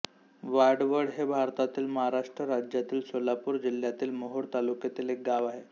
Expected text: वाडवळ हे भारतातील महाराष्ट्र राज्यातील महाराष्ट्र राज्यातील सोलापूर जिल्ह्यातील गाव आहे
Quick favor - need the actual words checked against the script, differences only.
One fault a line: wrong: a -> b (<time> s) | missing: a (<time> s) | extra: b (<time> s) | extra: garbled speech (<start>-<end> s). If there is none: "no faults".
wrong: महाराष्ट्र राज्यातील सोलापूर जिल्ह्यातील -> सोलापूर जिल्ह्यातील मोहोळ तालुक्यातील एक (3.1 s)